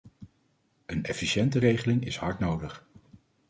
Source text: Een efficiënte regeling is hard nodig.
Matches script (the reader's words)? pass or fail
pass